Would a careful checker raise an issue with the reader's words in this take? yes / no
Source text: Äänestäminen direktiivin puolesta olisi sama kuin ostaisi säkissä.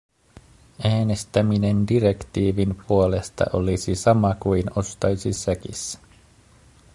no